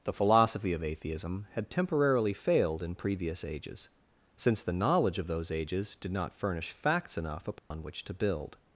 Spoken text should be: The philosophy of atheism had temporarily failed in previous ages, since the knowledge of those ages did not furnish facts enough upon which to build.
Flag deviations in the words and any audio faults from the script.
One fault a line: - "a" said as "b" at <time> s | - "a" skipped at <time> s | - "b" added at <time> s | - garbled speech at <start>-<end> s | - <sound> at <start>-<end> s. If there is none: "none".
- dropout at 7.6-7.7 s